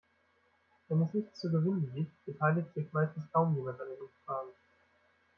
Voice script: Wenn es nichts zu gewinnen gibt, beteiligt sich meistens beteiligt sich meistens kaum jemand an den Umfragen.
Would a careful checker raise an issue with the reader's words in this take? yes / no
yes